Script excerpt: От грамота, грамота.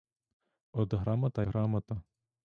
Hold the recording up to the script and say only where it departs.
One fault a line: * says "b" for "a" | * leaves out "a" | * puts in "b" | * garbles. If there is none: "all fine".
all fine